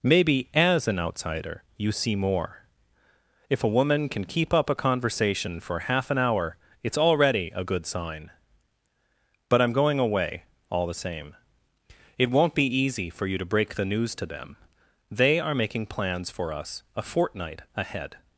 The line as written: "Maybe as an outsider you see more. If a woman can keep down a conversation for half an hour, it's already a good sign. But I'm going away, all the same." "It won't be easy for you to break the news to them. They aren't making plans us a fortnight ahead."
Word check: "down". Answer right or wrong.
wrong